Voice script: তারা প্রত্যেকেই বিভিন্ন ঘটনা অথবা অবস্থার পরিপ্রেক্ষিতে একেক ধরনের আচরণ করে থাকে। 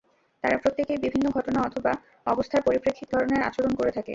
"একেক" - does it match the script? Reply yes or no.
no